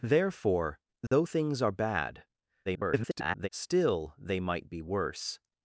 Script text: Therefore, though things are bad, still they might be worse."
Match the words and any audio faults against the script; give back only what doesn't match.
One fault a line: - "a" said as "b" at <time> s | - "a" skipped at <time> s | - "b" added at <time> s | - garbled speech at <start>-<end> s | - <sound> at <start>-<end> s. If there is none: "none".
- dropout at 1.1-1.1 s
- garbled speech at 2.7-3.5 s